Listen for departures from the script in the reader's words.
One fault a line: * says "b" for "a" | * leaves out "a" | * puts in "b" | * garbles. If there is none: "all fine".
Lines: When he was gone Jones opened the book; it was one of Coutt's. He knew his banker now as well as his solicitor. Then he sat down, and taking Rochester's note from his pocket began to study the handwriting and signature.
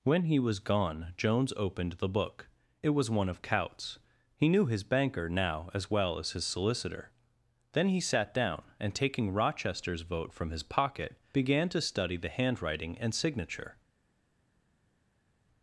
* says "vote" for "note"